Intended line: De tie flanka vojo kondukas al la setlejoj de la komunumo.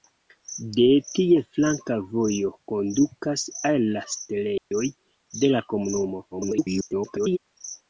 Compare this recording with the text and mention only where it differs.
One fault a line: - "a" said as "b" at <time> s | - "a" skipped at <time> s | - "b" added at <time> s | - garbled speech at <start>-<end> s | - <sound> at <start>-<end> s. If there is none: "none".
- dropout at 4.6-4.7 s
- garbled speech at 6.3-7.4 s